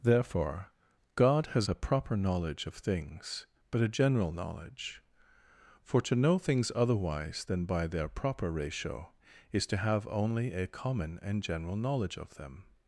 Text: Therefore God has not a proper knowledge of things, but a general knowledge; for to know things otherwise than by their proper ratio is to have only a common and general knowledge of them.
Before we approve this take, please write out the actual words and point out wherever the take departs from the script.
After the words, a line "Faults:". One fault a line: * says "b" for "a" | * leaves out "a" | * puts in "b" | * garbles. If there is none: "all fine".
Therefore God has a proper knowledge of things, but a general knowledge; for to know things otherwise than by their proper ratio is to have only a common and general knowledge of them.
Faults:
* leaves out "not"